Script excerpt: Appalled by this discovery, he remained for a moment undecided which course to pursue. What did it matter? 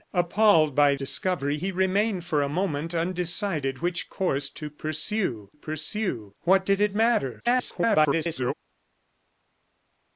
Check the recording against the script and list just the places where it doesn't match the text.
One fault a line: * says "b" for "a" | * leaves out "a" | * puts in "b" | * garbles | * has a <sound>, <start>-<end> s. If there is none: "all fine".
* leaves out "this"
* puts in "pursue"
* garbles